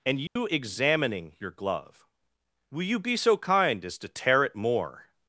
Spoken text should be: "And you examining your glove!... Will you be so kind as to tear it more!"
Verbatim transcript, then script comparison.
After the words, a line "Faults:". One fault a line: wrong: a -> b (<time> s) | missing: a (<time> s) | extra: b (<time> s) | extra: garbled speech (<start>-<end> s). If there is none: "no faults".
"And you examining your glove!... Will you be so kind as to tear it more!"
Faults:
no faults